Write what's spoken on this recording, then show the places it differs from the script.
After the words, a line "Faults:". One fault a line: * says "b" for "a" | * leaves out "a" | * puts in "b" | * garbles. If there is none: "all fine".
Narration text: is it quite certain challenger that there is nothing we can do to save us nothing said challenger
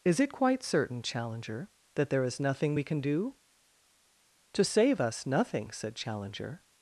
is it quite certain challenger that there is nothing we can do to save us nothing said challenger
Faults:
all fine